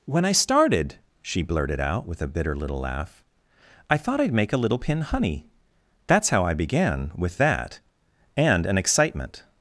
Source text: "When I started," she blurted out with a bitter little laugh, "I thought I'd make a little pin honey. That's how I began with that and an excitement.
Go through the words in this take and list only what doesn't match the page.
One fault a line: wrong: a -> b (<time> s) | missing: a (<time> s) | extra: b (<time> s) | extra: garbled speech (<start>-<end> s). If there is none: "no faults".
no faults